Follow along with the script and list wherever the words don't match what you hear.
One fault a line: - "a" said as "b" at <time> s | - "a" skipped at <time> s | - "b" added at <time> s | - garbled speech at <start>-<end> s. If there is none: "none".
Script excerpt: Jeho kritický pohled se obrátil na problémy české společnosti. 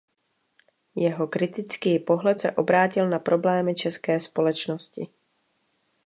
none